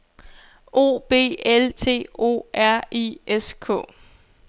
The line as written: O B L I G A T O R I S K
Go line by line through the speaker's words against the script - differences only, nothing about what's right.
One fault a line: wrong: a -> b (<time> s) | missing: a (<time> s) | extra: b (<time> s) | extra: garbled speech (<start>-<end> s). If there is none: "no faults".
missing: I G A (1.7 s)